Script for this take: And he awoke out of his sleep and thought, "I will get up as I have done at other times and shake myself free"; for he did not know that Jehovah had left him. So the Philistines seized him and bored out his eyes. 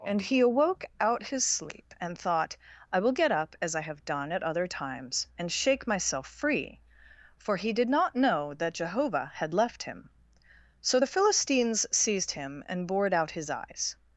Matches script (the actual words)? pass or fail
fail